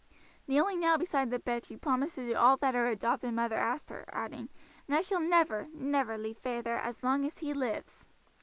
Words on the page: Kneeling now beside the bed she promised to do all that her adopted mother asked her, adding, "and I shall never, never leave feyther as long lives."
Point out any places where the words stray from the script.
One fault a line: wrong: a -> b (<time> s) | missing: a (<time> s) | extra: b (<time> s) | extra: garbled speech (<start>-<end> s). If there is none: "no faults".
extra: as he (7.3 s)